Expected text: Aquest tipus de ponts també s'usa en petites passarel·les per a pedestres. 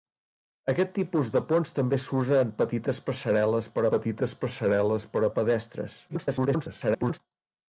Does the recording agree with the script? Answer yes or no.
no